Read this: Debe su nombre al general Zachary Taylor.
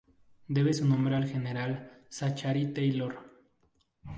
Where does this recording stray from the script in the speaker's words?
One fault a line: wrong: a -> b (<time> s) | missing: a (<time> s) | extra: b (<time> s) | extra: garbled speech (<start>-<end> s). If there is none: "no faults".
no faults